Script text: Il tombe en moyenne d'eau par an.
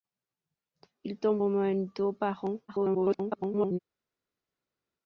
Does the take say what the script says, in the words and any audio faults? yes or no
no